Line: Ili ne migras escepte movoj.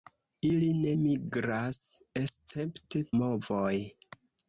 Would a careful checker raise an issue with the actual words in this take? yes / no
no